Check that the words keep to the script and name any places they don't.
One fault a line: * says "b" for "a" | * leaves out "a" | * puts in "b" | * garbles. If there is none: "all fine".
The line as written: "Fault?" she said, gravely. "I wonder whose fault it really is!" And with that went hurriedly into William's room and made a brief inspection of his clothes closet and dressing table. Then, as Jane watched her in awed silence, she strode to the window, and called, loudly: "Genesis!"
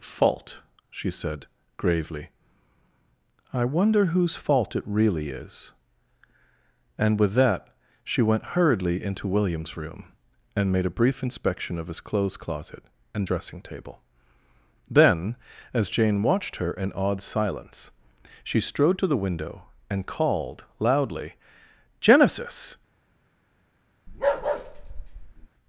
* puts in "she"